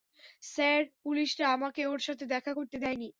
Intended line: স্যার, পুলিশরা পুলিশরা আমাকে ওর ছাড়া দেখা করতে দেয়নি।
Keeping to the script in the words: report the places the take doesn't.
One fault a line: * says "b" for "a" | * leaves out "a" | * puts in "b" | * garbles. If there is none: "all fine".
* leaves out "পুলিশরা"
* says "সাথে" for "ছাড়া"